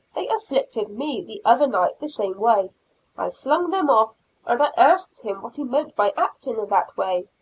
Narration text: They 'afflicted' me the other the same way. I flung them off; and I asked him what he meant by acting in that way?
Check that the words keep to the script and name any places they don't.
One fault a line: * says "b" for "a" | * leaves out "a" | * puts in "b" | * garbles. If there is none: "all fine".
* puts in "night"